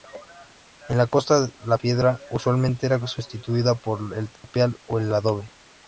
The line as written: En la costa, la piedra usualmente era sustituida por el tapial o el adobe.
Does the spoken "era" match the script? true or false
true